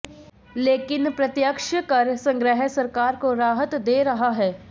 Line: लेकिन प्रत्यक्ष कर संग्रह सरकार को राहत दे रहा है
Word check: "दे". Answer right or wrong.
right